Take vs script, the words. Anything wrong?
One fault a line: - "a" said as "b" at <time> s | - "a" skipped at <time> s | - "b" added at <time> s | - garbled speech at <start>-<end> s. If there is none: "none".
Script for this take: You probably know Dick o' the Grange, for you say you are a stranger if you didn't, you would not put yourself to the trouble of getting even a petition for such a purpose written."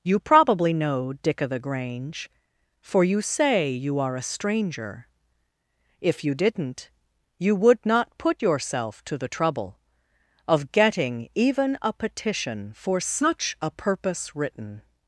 none